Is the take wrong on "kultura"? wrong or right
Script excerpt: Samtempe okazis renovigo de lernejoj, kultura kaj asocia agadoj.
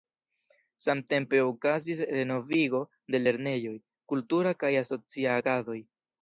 right